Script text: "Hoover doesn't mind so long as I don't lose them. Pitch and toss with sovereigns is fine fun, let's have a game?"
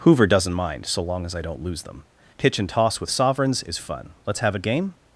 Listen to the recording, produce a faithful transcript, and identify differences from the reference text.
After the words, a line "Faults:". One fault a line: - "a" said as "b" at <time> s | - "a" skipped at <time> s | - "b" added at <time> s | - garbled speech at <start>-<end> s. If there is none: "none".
"Hoover doesn't mind so long as I don't lose them. Pitch and toss with sovereigns is fun, let's have a game?"
Faults:
- "fine" skipped at 3.8 s